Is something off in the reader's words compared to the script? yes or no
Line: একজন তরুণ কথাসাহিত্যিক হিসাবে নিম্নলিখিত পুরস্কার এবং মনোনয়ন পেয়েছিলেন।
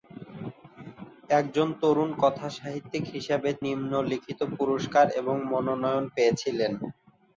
no